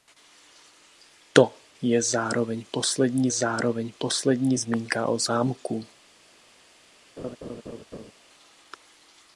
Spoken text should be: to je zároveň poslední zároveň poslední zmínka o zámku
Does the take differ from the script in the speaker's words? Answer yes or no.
no